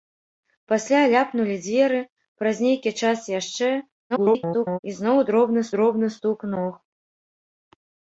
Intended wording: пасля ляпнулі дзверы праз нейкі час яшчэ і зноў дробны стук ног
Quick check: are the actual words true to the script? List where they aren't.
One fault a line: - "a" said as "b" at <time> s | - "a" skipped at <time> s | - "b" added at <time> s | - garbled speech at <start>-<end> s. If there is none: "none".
- garbled speech at 4.1-4.8 s
- "дробны" added at 5.8 s